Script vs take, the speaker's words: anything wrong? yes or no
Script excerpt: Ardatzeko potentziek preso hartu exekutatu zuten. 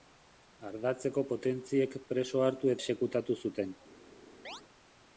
no